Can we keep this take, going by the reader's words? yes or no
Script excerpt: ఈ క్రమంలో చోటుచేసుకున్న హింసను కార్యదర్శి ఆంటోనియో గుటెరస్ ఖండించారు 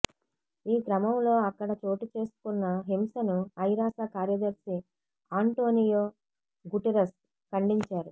no